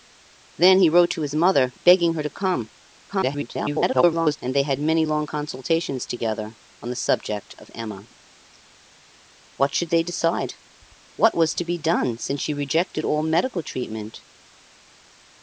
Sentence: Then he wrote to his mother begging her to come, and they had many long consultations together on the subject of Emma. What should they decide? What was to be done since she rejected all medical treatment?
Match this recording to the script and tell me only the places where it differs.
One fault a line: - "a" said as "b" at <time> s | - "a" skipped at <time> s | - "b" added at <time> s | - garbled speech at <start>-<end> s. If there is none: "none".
- garbled speech at 3.1-4.4 s